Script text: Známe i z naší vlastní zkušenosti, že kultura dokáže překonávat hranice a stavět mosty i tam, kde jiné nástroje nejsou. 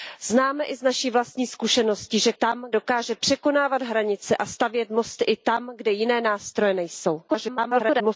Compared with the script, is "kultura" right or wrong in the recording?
wrong